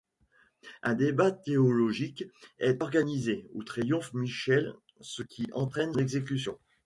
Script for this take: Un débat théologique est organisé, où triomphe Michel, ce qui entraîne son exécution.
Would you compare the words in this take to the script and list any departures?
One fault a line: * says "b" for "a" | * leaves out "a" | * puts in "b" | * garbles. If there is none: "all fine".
* leaves out "son"